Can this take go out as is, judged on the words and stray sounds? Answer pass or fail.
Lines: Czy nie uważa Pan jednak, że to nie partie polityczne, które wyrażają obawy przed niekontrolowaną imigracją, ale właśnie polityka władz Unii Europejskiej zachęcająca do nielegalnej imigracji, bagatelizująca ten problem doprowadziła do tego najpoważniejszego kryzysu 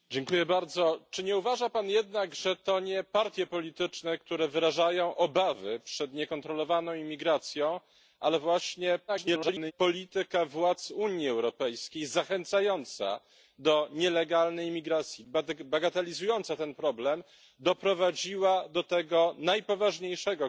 fail